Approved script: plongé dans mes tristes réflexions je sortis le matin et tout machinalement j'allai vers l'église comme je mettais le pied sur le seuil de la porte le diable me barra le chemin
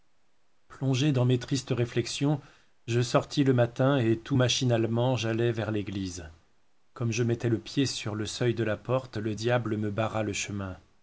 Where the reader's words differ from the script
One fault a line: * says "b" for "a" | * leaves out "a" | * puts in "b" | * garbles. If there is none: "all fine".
all fine